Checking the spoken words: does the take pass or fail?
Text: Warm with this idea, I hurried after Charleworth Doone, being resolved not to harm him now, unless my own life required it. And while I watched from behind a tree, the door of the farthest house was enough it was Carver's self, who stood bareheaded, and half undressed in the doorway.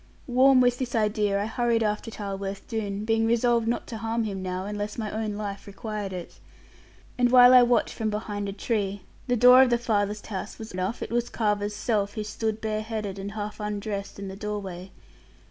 pass